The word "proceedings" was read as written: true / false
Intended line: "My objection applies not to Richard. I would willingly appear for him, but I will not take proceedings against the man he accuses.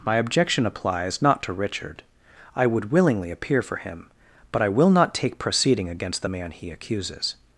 false